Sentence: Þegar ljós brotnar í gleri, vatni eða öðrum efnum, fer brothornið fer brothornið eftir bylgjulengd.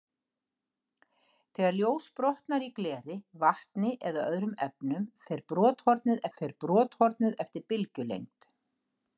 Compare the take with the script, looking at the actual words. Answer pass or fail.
pass